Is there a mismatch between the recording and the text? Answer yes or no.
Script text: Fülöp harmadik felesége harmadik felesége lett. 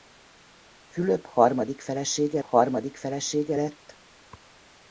no